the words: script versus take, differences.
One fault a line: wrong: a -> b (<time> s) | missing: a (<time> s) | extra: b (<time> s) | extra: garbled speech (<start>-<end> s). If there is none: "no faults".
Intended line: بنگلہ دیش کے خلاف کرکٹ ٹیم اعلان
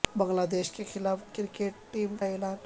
no faults